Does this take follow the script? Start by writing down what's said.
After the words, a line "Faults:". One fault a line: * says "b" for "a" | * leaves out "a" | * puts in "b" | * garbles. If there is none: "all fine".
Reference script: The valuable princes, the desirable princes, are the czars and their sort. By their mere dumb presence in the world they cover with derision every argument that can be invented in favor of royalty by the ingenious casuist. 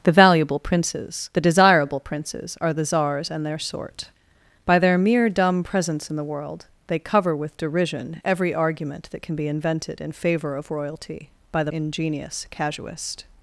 The valuable princes, the desirable princes, are the czars and their sort. By their mere dumb presence in the world they cover with derision every argument that can be invented in favor of royalty by the ingenious casuist.
Faults:
all fine